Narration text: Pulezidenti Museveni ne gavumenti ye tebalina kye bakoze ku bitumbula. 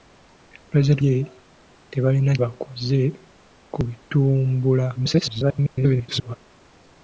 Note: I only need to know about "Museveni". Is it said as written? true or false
false